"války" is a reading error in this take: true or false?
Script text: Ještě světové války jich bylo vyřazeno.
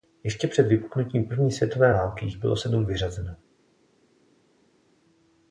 false